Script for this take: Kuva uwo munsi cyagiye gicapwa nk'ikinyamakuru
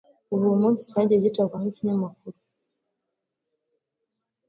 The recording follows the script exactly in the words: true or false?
true